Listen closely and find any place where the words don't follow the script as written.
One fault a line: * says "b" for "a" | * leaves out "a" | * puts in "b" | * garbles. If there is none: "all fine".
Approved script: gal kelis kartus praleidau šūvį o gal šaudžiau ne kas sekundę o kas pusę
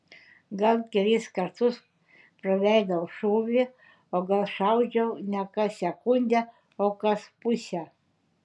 all fine